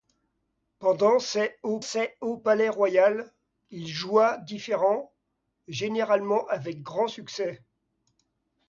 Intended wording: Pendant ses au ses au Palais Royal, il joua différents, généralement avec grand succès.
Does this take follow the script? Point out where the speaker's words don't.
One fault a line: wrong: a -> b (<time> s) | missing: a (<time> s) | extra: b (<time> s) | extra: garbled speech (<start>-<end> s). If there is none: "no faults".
no faults